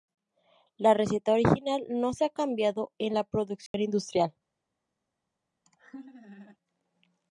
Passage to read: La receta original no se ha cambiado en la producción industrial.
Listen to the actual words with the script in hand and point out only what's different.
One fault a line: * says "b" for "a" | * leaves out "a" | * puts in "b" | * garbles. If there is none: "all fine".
all fine